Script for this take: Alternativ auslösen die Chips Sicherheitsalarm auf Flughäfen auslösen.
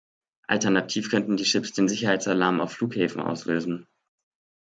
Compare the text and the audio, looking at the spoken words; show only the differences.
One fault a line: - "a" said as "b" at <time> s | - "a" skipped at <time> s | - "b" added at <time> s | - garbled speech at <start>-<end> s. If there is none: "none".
- "auslösen" said as "könnten" at 1.1 s
- "den" added at 1.7 s